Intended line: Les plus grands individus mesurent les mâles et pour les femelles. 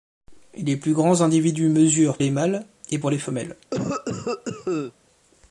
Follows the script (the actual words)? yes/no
yes